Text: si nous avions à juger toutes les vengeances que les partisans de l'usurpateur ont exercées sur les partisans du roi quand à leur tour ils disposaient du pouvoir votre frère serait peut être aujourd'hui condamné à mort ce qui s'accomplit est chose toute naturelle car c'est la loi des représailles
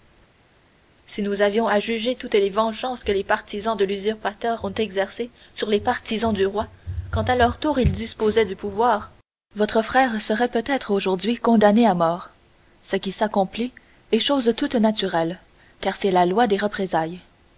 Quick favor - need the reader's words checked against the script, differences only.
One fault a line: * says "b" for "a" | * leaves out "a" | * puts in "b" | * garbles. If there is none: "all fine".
all fine